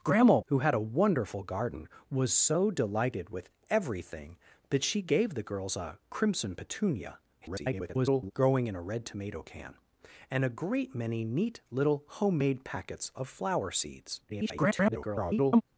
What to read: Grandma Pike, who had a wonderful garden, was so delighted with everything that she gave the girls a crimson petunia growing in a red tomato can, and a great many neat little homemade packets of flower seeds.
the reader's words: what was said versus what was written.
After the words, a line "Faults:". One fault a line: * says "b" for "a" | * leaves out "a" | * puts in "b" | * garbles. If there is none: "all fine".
Grandma Who had a wonderful garden, was so delighted with everything that she gave the girls a crimson petunia [garbled] growing in a red tomato can, and a great many neat little homemade packets of flower seeds. [garbled]
Faults:
* leaves out "Pike"
* garbles
* garbles